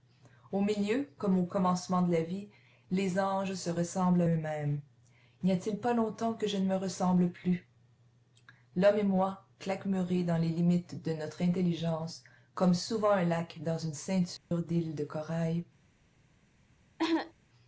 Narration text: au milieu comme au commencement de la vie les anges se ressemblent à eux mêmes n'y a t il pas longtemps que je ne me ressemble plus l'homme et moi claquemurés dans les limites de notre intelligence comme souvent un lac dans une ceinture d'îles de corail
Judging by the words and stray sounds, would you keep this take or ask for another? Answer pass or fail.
fail